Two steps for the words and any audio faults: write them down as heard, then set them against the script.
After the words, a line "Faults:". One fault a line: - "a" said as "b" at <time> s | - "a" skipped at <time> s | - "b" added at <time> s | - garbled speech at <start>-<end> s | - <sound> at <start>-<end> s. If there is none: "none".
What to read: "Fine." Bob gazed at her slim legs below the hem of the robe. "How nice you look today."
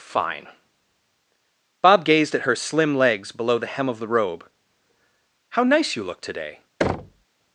"Fine." Bob gazed at her slim legs below the hem of the robe. "How nice you look today."
Faults:
- thud at 6.8-7.3 s